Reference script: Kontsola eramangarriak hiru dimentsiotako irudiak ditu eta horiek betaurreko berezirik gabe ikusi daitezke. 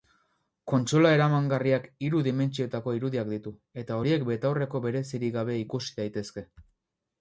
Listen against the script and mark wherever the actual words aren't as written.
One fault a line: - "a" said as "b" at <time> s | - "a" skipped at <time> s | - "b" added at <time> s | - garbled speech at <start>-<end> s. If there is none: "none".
none